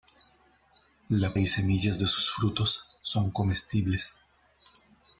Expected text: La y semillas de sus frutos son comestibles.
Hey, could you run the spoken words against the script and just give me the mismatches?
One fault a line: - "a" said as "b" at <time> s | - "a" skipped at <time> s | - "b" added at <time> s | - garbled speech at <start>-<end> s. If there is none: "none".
none